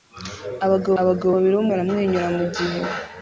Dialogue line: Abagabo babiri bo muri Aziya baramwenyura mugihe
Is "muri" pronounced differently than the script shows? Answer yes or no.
yes